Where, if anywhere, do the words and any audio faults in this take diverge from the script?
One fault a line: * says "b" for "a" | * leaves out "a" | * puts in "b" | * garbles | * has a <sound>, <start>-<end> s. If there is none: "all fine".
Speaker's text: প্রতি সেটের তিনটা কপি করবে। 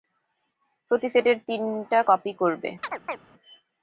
* has a chirp, 2.8-3.2 s